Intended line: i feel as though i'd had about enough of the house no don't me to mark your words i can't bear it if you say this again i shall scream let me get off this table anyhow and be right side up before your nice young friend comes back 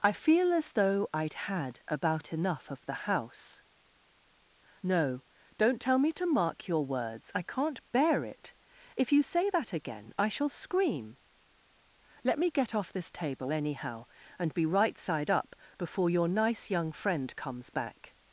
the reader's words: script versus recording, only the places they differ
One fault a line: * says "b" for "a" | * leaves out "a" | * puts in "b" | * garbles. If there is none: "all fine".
* puts in "tell"
* says "that" for "this"